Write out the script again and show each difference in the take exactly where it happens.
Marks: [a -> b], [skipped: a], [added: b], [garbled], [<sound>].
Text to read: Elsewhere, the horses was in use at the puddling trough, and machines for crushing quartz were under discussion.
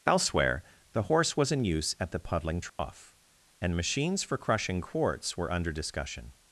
Elsewhere, the [horses -> horse] was in use at the puddling trough, [dropout] and machines for crushing quartz were under discussion.